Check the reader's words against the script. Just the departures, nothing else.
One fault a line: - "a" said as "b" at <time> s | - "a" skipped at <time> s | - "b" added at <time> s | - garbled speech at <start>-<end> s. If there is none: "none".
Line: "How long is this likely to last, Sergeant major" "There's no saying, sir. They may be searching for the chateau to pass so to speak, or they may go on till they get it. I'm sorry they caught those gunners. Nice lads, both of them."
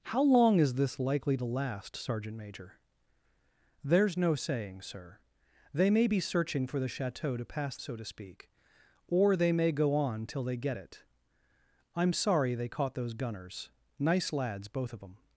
none